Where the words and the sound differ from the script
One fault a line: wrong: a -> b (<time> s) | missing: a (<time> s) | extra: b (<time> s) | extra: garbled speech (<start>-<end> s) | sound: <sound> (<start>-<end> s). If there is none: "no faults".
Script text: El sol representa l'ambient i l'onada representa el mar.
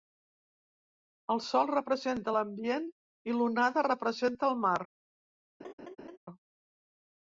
sound: laugh (5.6-6.2 s)